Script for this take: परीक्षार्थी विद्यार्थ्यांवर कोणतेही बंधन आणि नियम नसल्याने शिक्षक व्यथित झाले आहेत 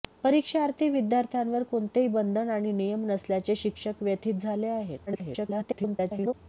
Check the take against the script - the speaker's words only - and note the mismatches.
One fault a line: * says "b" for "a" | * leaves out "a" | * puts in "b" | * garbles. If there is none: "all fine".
* garbles